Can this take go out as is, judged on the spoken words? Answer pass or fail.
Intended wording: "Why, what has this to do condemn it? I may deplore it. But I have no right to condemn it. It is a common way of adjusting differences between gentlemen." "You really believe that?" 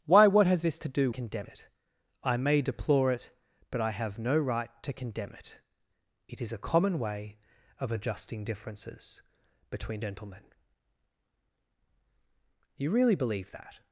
pass